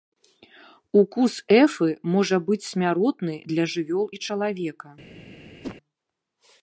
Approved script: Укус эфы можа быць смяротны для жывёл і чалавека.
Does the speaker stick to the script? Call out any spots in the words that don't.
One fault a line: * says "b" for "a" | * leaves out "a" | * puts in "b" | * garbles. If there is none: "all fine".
all fine